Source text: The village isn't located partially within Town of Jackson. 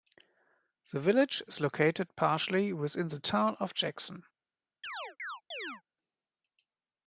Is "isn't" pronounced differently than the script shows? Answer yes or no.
yes